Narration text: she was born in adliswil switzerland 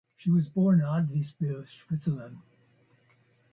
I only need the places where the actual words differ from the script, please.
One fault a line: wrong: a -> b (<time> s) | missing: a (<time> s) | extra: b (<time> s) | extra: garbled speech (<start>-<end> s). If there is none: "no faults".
no faults